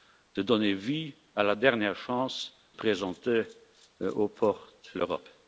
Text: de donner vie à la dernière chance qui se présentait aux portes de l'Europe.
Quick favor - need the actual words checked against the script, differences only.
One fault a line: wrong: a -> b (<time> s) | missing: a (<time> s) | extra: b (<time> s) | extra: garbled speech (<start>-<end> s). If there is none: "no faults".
missing: qui se (2.5 s)
missing: de (5.0 s)